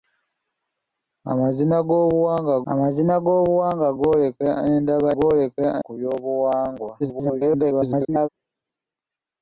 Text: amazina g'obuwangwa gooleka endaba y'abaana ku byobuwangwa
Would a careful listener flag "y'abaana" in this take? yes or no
yes